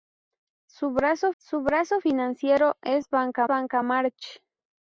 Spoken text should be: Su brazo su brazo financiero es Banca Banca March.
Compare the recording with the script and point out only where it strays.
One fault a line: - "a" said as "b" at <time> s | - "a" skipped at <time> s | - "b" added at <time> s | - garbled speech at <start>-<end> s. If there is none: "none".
none